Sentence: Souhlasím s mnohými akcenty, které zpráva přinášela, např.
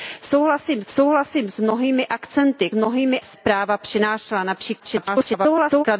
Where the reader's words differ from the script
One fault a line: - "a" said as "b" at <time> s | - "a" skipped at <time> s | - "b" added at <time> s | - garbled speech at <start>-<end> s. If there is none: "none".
- "souhlasím" added at 0.9 s
- "které" said as "mnohými" at 2.7 s
- garbled speech at 4.8-5.8 s